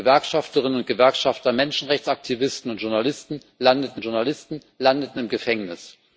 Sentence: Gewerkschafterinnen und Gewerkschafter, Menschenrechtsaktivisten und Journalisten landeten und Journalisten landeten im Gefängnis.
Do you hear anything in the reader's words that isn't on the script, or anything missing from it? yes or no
no